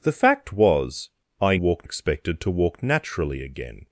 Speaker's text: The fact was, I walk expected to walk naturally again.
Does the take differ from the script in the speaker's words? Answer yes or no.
no